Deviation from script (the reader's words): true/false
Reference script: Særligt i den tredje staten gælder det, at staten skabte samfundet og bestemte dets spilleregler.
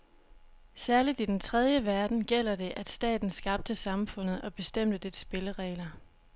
true